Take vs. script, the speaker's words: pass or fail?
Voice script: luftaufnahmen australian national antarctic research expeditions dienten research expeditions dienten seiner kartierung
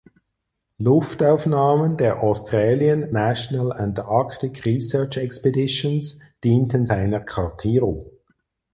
fail